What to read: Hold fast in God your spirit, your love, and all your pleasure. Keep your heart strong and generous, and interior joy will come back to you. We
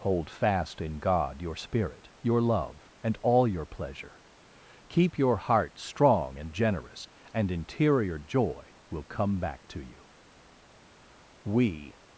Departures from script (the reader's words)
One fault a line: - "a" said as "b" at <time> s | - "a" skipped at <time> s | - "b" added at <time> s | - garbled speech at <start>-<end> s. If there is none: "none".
none